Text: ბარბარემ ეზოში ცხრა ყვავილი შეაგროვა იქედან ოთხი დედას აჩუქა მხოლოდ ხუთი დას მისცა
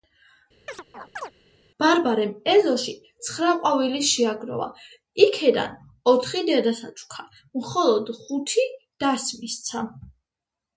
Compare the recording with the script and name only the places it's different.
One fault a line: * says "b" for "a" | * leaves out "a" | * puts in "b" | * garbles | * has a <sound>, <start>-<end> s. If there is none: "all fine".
* has a chirp, 0.7-1.3 s